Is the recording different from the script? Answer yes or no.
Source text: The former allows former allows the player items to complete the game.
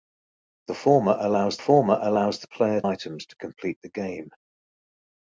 no